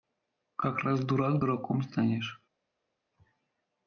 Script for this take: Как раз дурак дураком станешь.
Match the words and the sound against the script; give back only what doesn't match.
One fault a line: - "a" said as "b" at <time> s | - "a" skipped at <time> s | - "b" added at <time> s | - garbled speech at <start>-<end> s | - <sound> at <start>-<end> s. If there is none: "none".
none